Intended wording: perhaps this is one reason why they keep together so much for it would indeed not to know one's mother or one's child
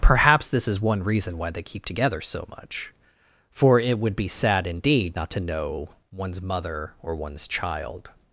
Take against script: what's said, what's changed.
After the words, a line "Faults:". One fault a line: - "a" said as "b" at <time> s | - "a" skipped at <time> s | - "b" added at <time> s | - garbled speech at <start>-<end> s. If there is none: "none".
perhaps this is one reason why they keep together so much for it would be sad indeed not to know one's mother or one's child
Faults:
- "be sad" added at 4.2 s